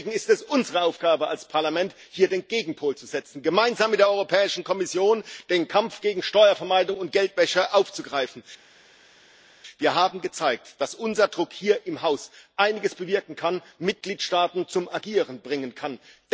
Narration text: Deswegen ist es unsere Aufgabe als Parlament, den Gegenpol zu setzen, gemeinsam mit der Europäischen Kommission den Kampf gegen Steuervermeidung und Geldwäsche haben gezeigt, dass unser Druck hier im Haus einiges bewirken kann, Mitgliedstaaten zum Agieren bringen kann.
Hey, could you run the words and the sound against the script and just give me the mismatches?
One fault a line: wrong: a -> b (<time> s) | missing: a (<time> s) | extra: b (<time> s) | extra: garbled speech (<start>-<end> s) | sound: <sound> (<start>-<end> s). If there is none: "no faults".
extra: hier (2.1 s)
extra: aufzugreifen Wir (7.7 s)